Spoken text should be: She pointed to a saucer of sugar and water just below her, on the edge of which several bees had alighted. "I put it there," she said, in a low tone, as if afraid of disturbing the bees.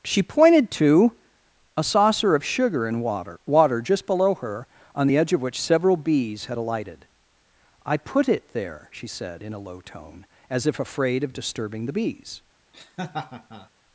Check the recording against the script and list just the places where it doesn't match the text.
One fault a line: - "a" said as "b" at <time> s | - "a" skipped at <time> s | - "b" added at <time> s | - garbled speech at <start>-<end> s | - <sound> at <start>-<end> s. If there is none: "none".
- "water" added at 3.5 s
- laugh at 12.7-13.7 s